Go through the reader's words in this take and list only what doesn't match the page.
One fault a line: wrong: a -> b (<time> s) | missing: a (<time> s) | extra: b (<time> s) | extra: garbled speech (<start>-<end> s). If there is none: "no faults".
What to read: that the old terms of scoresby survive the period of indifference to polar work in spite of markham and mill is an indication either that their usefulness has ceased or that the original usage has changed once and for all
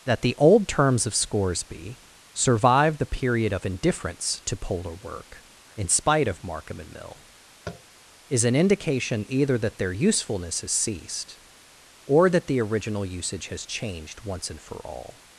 no faults